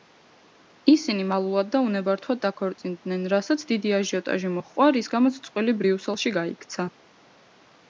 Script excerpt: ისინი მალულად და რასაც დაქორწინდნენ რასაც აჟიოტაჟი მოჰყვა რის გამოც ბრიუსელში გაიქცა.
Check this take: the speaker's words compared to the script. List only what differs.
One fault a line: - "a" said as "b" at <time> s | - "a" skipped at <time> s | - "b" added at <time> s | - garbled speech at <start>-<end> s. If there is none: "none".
- "რასაც" said as "უნებართვოდ" at 1.9 s
- "დიდი" added at 3.8 s
- "წყვილი" added at 5.5 s